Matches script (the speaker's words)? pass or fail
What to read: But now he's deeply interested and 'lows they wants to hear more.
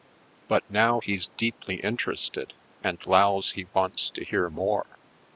fail